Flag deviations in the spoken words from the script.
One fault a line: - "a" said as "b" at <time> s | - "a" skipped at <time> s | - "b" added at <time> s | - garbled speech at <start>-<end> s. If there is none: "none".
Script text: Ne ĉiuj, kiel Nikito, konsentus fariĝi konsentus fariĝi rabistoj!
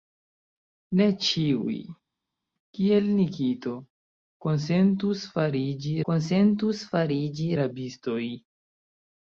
none